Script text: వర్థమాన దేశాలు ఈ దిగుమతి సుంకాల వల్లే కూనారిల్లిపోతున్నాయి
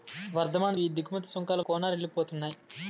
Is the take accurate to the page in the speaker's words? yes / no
no